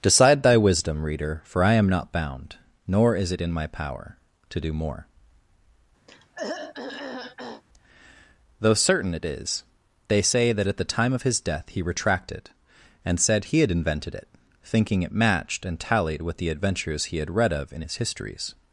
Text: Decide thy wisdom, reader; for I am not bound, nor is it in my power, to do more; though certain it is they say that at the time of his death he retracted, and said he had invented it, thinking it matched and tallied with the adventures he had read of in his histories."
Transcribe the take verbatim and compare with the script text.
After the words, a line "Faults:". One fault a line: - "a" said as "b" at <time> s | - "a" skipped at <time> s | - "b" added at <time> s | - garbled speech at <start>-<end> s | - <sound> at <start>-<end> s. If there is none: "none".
Decide thy wisdom, reader; for I am not bound, nor is it in my power, to do more; though certain it is they say that at the time of his death he retracted, and said he had invented it, thinking it matched and tallied with the adventures he had read of in his histories."
Faults:
- throat clearing at 6.1-7.6 s